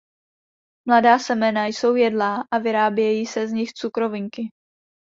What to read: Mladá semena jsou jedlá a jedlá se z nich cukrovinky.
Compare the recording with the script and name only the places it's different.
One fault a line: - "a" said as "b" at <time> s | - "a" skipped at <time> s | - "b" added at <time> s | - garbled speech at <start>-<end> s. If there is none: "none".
- "jedlá" said as "vyrábějí" at 2.6 s